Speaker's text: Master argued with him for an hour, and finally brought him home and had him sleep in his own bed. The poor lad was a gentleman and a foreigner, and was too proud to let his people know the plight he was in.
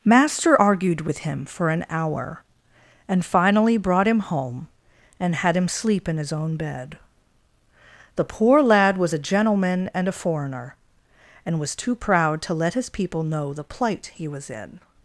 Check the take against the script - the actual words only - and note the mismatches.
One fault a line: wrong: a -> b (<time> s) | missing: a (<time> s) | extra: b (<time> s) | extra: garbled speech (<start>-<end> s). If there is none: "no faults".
no faults